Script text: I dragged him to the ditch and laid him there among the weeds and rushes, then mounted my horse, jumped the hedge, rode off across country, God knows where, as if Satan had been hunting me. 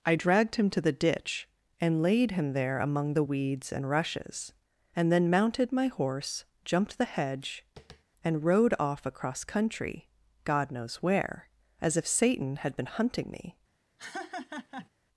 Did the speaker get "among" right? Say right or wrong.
right